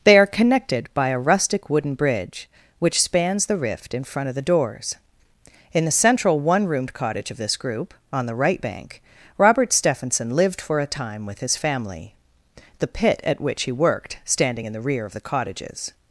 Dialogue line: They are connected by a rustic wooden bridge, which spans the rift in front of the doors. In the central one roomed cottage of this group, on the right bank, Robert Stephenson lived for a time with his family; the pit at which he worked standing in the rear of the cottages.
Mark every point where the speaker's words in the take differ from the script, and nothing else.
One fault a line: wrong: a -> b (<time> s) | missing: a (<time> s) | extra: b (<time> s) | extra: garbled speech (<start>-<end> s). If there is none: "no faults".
no faults